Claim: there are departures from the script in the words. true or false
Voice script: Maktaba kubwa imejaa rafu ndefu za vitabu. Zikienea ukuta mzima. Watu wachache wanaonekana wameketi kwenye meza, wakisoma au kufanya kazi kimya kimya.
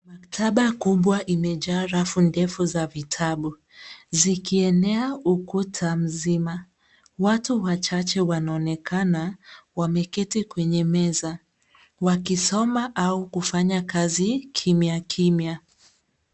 false